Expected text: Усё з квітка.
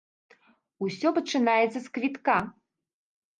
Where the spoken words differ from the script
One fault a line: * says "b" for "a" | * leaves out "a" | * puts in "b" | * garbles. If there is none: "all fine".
* puts in "пачынаецца"